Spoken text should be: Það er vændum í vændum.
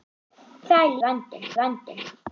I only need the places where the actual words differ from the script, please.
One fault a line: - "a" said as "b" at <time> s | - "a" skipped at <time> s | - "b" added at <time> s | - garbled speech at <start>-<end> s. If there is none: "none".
none